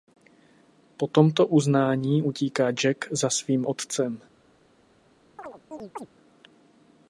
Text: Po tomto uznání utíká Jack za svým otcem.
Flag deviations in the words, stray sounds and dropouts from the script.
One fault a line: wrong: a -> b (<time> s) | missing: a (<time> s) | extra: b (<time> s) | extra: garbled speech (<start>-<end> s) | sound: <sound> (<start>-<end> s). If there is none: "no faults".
sound: chirp (5.4-6.1 s)